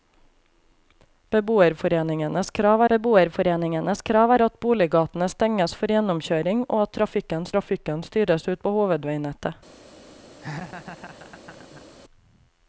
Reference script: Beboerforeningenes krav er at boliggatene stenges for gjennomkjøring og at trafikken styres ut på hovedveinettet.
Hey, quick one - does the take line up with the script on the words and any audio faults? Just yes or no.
no